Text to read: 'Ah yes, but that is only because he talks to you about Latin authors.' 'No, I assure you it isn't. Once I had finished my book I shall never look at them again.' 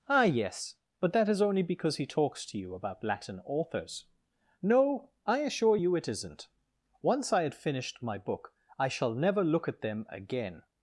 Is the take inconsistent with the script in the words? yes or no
no